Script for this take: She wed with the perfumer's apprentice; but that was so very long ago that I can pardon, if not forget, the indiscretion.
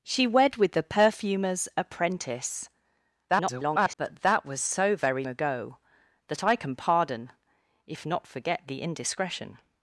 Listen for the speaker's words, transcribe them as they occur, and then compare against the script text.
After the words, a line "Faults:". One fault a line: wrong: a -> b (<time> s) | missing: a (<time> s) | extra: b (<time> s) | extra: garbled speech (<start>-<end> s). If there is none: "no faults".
She wed with the perfumer's apprentice; [garbled] but that was so very ago that I can pardon, if not forget, the indiscretion.
Faults:
extra: garbled speech (3.3-4.0 s)
missing: long (5.2 s)